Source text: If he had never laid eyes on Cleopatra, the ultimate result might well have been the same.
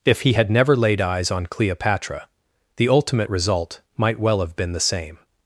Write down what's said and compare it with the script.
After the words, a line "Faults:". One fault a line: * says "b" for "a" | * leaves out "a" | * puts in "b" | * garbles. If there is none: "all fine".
If he had never laid eyes on Cleopatra, the ultimate result might well have been the same.
Faults:
all fine